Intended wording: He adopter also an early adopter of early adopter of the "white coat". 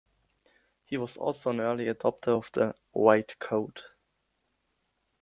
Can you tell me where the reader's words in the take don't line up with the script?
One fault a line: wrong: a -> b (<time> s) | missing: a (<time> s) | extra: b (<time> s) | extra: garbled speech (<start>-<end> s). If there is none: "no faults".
wrong: adopter -> was (1.0 s)
missing: early adopter of (2.5 s)